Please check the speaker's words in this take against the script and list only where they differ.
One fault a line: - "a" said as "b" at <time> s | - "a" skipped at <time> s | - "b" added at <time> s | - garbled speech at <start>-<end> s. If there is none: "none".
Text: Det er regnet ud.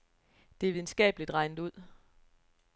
- "videnskabeligt" added at 0.7 s